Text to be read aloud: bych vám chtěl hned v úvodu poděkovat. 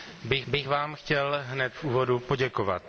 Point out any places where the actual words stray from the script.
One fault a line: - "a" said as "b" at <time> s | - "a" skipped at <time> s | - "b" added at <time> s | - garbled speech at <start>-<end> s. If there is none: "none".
- "bych" added at 0.5 s